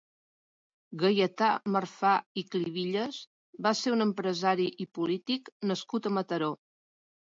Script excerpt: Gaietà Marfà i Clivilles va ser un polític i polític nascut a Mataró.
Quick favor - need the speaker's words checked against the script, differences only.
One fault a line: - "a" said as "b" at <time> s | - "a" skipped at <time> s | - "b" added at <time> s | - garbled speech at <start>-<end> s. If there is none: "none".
- "polític" said as "empresari" at 4.1 s